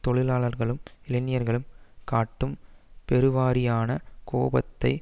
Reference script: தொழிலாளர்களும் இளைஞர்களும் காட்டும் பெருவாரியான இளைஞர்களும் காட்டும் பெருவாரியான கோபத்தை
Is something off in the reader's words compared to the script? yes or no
yes